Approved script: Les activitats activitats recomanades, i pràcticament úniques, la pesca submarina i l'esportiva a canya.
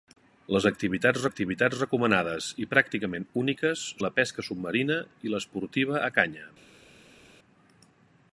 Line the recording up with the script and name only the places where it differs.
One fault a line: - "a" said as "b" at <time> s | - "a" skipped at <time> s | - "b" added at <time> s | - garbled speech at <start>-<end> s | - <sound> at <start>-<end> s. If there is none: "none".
none